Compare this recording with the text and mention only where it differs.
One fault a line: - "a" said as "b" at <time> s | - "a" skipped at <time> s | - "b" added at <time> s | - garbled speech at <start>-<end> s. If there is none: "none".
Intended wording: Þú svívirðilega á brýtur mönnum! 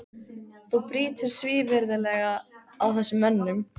- "brýtur" added at 0.9 s
- "brýtur" said as "þessum" at 3.0 s